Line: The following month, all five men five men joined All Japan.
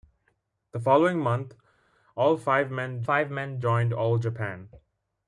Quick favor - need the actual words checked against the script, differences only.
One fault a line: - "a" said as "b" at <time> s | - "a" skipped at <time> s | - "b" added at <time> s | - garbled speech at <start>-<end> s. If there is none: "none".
none